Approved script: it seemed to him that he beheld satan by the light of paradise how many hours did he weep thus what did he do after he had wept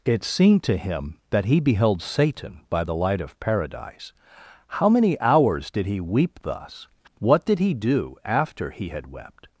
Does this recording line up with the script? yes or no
yes